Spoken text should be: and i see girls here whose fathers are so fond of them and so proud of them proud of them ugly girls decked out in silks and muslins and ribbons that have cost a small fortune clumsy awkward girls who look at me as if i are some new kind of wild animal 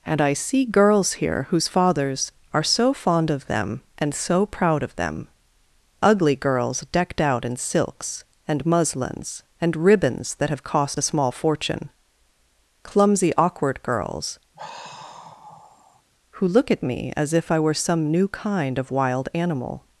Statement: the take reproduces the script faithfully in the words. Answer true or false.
false